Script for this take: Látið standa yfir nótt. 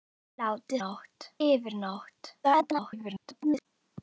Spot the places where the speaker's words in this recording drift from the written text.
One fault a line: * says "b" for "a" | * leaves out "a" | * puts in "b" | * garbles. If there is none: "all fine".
* says "nótt" for "standa"
* garbles